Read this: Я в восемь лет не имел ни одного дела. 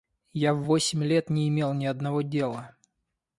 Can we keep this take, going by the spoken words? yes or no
yes